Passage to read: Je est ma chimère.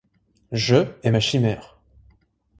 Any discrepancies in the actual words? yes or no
no